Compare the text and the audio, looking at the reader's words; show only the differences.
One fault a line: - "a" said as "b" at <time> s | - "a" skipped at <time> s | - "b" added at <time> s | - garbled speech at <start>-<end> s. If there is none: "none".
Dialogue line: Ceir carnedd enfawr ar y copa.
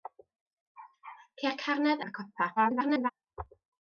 - "enfawr" skipped at 2.0 s
- garbled speech at 2.6-3.1 s